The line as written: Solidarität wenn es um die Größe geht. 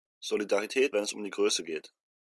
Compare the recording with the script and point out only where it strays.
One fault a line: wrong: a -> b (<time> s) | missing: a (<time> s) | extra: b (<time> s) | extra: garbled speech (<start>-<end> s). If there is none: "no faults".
no faults